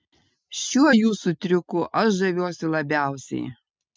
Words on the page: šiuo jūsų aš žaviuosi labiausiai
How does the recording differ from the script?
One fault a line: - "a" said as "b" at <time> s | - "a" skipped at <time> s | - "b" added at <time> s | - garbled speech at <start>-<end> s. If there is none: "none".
- "triuku" added at 1.5 s